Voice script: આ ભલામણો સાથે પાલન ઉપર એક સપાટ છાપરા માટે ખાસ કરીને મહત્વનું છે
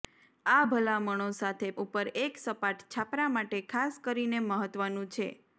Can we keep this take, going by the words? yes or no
no